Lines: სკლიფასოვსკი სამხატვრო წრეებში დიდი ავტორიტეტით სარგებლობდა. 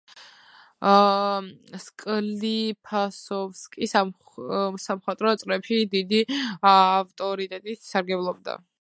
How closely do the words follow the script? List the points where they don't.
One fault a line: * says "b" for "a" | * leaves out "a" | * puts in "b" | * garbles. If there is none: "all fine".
all fine